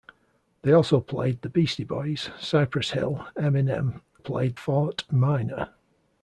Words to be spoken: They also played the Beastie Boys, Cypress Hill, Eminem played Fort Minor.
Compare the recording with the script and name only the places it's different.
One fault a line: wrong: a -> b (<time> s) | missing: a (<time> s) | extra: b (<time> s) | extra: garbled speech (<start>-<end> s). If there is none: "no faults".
no faults